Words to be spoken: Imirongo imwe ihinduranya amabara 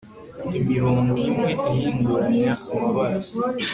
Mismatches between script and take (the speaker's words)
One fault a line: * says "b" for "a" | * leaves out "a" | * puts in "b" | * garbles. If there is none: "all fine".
all fine